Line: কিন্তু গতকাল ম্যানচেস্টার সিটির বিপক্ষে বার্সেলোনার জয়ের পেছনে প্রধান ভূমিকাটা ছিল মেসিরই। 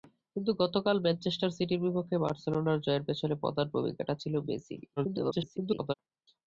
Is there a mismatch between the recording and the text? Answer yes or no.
yes